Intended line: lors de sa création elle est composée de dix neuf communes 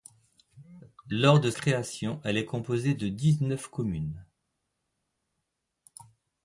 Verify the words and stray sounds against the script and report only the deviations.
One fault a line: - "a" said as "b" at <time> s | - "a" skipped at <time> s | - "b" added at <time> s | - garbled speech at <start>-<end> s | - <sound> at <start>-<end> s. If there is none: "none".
- "sa" skipped at 1.5 s